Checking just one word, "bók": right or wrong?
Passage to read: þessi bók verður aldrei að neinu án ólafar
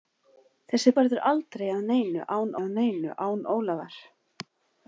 wrong